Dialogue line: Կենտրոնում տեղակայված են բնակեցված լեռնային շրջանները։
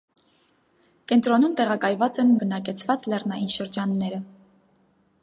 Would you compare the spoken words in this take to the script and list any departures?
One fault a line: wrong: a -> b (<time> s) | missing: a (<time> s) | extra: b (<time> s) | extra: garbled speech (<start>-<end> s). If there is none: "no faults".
no faults